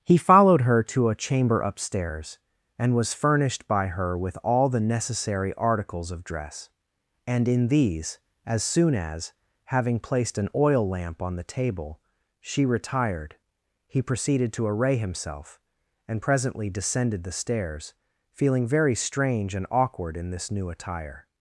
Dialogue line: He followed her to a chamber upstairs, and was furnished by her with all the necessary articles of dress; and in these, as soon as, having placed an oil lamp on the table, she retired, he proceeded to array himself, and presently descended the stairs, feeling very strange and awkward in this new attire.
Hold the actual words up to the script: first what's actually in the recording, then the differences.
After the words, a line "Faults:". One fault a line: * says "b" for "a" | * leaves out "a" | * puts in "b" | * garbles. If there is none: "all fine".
He followed her to a chamber upstairs, and was furnished by her with all the necessary articles of dress; and in these, as soon as, having placed an oil lamp on the table, she retired, he proceeded to array himself, and presently descended the stairs, feeling very strange and awkward in this new attire.
Faults:
all fine